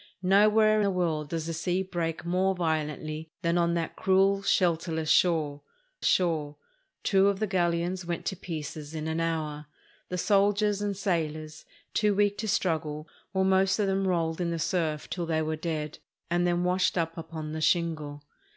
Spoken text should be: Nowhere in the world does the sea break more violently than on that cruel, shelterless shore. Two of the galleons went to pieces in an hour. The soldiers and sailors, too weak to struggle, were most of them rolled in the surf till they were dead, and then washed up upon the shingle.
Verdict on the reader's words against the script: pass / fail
fail